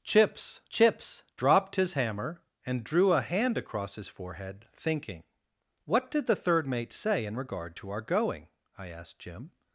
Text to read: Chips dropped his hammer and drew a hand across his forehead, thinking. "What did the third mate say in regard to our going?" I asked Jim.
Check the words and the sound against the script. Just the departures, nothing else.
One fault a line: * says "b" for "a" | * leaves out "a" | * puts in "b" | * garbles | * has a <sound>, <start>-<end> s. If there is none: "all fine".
* puts in "chips"